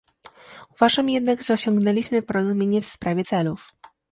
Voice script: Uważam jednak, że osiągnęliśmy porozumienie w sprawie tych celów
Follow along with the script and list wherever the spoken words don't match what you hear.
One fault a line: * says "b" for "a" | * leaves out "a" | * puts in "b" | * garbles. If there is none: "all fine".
* leaves out "tych"